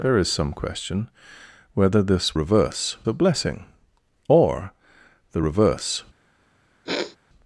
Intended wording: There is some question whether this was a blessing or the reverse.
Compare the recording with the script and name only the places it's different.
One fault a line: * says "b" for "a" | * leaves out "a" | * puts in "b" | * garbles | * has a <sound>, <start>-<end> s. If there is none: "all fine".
* says "reverse" for "was"
* has a sniff, 6.9-7.2 s